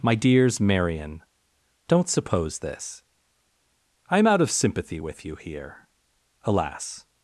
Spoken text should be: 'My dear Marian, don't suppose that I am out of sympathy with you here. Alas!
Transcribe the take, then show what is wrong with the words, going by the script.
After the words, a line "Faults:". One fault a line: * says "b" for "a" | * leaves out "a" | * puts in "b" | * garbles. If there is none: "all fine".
'My dears Marian, don't suppose this I am out of sympathy with you here. Alas!
Faults:
* says "dears" for "dear"
* says "this" for "that"